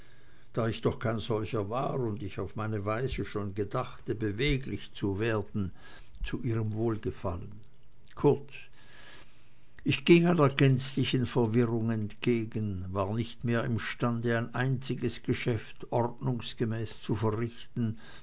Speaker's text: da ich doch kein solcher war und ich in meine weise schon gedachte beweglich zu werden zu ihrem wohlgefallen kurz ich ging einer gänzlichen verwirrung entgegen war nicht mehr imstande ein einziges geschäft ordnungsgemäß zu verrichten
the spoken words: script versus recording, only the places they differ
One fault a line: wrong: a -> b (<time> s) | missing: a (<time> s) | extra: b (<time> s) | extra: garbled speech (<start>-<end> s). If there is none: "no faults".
wrong: in -> auf (2.4 s)